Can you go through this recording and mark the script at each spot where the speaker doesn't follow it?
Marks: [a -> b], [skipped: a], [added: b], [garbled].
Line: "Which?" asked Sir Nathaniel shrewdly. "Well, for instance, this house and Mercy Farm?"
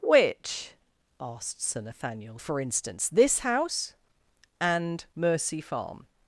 "Which?" asked Sir Nathaniel [skipped: shrewdly. "Well,] for instance, this house and Mercy Farm?"